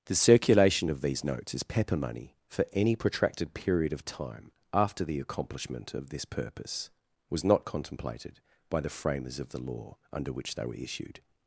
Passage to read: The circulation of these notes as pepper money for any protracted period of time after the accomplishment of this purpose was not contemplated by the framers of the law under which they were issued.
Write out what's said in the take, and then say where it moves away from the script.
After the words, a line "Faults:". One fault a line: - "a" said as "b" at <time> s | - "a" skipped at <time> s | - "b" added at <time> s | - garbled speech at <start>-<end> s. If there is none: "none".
The circulation of these notes as pepper money for any protracted period of time after the accomplishment of this purpose was not contemplated by the framers of the law under which they were issued.
Faults:
none